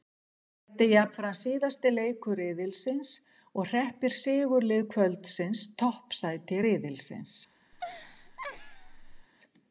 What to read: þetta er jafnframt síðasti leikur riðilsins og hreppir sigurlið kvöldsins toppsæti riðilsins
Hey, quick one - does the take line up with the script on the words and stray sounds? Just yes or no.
no